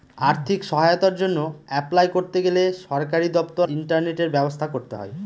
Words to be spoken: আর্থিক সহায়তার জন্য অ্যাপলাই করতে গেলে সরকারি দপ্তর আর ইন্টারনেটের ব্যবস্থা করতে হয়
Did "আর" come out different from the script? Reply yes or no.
yes